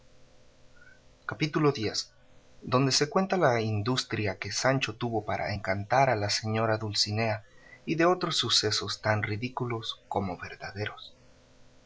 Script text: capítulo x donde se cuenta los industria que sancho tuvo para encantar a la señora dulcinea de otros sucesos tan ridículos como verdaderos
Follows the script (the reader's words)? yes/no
no